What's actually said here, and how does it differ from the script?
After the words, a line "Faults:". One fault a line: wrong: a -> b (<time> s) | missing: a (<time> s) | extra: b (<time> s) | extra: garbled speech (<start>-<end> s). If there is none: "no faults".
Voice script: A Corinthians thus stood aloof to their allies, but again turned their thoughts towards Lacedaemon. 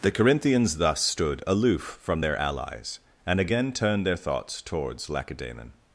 The Corinthians thus stood aloof from their allies, and again turned their thoughts towards Lacedaemon.
Faults:
wrong: A -> The (0.0 s)
wrong: to -> from (2.0 s)
wrong: but -> and (3.3 s)